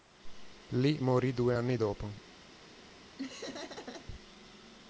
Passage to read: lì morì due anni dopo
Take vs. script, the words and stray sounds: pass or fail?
fail